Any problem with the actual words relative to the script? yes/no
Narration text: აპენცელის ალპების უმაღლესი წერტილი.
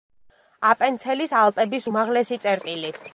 no